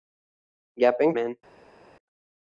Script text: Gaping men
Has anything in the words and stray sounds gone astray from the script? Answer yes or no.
no